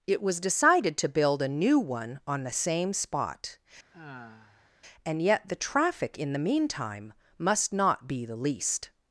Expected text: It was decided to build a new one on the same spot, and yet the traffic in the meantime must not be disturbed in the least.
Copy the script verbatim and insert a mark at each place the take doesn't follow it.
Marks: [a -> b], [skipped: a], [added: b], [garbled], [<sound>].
It was decided to build a new one on the same spot, [sigh] and yet the traffic in the meantime must not be [skipped: disturbed in] the least.